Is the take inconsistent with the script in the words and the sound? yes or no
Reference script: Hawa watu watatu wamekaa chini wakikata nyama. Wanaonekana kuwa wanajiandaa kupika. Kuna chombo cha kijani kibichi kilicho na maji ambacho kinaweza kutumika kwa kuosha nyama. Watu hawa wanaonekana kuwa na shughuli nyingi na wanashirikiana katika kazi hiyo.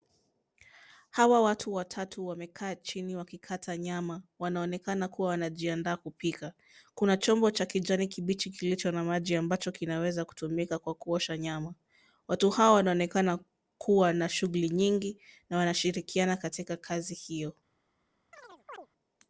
yes